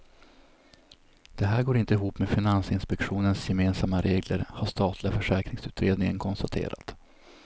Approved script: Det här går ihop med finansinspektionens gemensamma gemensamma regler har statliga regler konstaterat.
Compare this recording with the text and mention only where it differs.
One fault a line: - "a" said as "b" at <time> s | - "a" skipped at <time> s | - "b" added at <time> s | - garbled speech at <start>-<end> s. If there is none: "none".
- "inte" added at 1.8 s
- "gemensamma" skipped at 4.0 s
- "regler" said as "försäkringsutredningen" at 5.1 s